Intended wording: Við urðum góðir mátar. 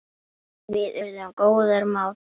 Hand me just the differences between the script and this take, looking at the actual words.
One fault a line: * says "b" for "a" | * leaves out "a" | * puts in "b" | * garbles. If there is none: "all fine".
all fine